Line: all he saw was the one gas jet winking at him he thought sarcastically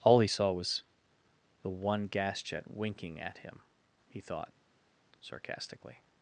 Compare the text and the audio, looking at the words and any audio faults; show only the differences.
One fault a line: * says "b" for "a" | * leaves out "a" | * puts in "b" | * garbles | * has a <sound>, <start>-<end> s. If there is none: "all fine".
all fine